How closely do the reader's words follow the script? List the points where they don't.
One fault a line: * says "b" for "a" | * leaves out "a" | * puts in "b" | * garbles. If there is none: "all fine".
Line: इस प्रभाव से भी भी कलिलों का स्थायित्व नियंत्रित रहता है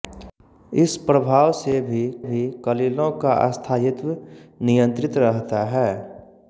all fine